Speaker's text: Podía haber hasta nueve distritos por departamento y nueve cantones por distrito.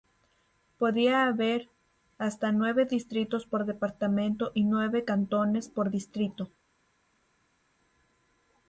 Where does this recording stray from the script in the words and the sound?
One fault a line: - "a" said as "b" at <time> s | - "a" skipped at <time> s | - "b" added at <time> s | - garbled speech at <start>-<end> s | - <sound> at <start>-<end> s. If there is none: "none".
none